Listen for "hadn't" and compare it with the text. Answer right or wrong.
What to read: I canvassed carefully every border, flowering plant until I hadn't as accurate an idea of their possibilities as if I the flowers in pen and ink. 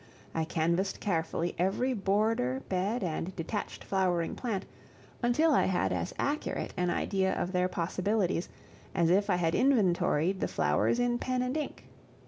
wrong